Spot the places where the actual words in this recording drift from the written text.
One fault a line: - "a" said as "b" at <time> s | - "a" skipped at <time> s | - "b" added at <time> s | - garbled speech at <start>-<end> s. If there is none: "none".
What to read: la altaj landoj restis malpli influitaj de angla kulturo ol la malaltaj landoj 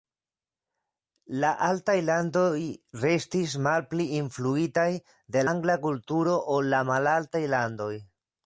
none